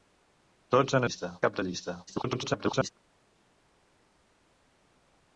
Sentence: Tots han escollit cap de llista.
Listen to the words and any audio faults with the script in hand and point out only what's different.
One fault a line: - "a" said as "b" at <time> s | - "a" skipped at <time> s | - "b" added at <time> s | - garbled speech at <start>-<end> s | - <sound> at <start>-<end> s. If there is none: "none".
- "escollit" said as "llista" at 1.0 s
- garbled speech at 2.1-2.9 s